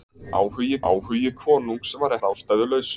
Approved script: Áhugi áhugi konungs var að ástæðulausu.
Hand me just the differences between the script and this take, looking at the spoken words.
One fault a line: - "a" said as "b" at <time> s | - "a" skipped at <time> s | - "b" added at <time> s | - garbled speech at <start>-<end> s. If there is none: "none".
none